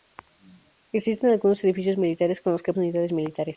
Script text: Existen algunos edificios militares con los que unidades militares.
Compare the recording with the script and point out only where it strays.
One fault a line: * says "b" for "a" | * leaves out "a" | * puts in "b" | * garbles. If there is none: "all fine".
all fine